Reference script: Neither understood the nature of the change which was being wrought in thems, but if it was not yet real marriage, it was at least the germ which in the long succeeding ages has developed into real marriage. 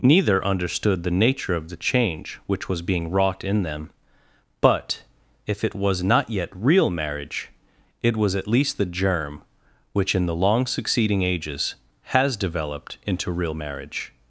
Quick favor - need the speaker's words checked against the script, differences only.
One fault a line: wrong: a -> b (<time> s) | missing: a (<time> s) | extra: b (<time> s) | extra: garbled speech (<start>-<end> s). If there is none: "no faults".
wrong: thems -> them (3.6 s)